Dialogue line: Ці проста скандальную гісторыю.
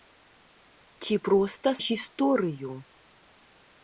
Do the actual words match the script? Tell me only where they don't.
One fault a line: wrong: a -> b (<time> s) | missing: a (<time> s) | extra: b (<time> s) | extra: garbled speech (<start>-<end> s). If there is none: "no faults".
missing: скандальную (1.7 s)